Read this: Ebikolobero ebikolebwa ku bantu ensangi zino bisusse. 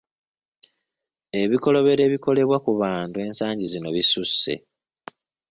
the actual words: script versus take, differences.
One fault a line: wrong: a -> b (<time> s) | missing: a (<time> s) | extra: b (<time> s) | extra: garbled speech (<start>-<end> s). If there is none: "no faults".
no faults